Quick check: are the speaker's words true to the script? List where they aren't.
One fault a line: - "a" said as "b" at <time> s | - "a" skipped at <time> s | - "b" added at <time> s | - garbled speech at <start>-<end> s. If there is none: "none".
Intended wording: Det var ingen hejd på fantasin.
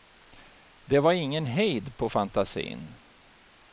none